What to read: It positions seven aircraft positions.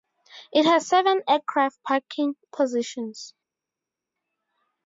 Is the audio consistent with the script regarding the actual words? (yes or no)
no